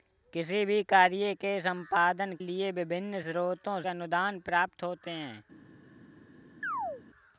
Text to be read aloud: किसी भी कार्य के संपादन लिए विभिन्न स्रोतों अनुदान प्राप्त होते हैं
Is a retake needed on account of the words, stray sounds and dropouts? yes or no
yes